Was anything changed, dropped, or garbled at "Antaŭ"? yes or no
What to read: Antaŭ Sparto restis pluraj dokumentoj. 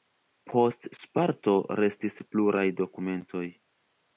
yes